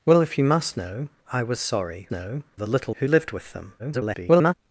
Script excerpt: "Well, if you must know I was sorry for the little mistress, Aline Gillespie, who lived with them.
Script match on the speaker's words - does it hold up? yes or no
no